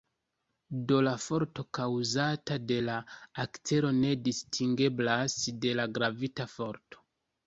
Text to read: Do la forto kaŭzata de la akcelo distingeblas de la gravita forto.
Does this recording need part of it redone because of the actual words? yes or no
yes